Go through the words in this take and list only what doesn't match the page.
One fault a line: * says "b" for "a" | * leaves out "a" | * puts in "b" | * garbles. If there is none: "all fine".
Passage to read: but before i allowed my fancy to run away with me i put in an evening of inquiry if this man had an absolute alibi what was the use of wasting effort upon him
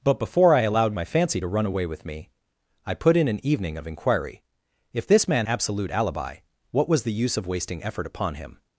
* leaves out "had an"